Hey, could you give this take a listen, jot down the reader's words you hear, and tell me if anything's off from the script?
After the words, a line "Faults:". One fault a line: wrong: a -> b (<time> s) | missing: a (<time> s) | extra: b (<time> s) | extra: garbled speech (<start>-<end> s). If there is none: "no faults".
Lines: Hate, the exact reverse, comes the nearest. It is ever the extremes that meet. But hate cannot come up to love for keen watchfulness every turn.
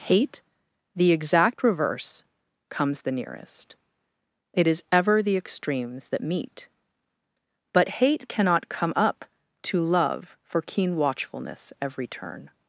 Hate, the exact reverse, comes the nearest. It is ever the extremes that meet. But hate cannot come up to love for keen watchfulness every turn.
Faults:
no faults